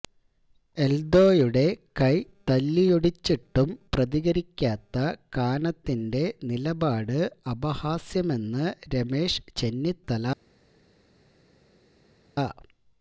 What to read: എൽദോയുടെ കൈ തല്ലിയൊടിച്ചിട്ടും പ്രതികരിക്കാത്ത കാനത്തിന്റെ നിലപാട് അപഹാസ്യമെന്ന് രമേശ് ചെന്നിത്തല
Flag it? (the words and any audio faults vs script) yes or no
no